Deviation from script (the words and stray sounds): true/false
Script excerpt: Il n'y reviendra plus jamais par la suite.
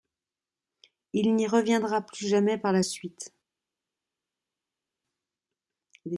false